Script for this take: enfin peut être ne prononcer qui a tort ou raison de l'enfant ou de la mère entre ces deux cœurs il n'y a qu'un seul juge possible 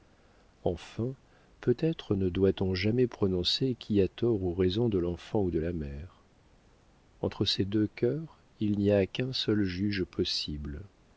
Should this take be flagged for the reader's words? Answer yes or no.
yes